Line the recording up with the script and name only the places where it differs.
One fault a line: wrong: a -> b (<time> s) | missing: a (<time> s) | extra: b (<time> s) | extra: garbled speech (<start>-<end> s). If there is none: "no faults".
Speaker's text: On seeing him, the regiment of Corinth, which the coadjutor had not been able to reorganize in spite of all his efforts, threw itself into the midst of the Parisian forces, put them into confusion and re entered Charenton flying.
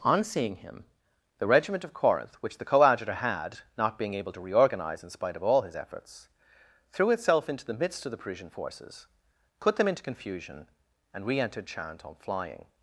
wrong: been -> being (4.0 s)